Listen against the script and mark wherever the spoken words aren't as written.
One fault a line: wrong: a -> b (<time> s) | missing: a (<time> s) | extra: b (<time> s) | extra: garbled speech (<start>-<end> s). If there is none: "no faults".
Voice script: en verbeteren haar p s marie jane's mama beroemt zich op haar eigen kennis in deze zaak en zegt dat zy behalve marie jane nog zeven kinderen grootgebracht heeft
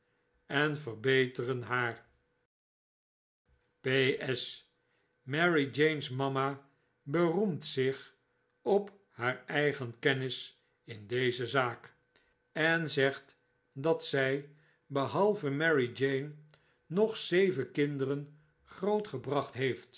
no faults